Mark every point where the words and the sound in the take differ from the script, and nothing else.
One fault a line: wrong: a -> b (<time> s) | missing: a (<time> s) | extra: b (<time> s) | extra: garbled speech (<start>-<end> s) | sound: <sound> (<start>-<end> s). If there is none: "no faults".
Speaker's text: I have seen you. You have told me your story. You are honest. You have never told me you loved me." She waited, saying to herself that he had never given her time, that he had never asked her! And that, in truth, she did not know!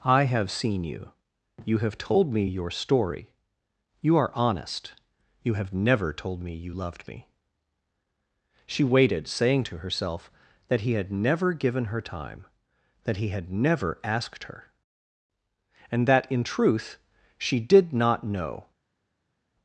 no faults